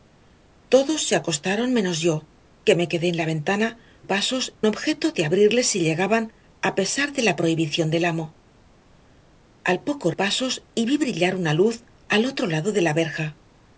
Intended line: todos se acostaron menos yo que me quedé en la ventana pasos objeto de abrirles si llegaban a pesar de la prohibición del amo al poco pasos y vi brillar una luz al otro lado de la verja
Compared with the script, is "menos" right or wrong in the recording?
right